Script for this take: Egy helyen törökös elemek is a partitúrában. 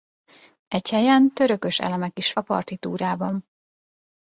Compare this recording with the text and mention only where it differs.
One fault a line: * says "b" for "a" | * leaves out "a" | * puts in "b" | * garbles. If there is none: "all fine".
all fine